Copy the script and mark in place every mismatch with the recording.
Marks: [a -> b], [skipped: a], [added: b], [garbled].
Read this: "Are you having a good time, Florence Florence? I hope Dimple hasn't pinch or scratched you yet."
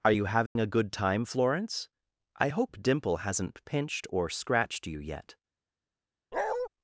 "Are you having a good time, Florence [skipped: Florence?] I hope Dimple hasn't [pinch -> pinched] or scratched you yet."